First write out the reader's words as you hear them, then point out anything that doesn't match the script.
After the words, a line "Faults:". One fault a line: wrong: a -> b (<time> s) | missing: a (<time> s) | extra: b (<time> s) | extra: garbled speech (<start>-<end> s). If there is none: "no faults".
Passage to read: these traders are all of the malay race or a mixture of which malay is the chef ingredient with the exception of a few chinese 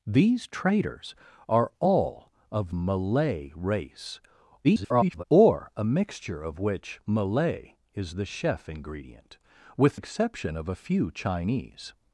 these traders are all of malay race [garbled] or a mixture of which malay is the chef ingredient with exception of a few chinese
Faults:
missing: the (2.8 s)
extra: garbled speech (4.6-5.2 s)
missing: the (10.0 s)